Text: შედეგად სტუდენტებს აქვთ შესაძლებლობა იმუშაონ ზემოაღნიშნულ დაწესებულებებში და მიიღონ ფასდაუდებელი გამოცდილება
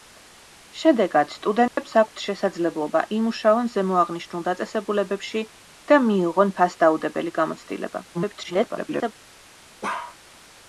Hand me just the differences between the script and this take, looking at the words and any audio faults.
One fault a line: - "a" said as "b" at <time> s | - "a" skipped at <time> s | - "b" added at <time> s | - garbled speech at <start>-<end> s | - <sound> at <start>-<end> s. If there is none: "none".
- dropout at 1.7-1.8 s
- garbled speech at 8.1-9.1 s
- bark at 9.8-10.2 s